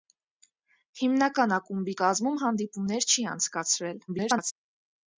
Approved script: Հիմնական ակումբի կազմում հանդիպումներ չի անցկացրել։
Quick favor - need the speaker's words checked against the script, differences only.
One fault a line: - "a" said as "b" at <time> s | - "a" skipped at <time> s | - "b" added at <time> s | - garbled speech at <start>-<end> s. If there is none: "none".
- garbled speech at 4.1-4.5 s